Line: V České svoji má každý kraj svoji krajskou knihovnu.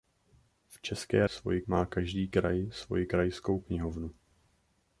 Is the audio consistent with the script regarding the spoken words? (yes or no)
yes